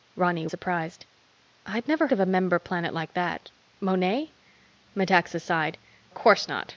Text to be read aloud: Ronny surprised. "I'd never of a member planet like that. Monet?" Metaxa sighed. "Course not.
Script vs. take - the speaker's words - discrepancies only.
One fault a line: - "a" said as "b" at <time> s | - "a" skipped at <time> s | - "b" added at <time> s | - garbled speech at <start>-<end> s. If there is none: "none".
none